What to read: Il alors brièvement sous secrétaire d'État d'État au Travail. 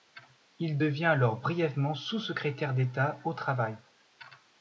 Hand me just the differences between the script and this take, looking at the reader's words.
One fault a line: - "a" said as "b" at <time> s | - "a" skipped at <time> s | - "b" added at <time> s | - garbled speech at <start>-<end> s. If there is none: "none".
- "devient" added at 0.8 s
- "d'État" skipped at 3.2 s